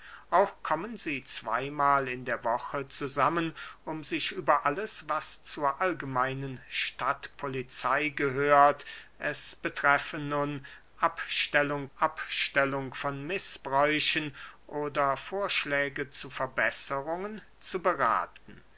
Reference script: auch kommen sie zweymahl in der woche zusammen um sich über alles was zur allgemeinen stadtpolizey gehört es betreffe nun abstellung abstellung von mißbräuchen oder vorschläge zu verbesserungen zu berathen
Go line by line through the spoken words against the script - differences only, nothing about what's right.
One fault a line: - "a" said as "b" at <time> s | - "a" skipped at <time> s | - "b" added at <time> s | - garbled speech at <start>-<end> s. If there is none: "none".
none